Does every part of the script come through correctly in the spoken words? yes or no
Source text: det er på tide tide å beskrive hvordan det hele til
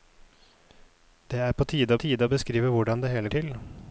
yes